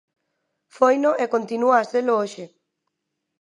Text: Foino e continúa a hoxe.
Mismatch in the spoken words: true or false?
true